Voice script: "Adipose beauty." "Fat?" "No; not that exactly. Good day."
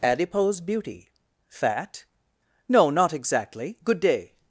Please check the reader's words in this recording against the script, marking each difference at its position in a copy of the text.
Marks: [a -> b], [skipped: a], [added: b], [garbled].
"Adipose beauty." "Fat?" "No; not [skipped: that] exactly. Good day."